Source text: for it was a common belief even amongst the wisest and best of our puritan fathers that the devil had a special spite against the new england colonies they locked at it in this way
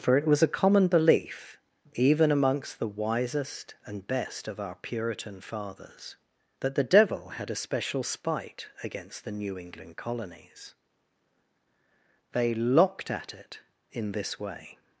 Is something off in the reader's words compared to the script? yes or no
no